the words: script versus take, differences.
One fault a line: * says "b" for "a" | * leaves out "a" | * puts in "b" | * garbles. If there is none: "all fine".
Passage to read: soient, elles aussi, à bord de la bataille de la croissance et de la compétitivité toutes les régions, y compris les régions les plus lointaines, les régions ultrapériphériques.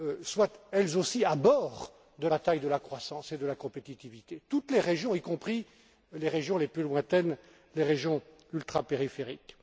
* leaves out "la"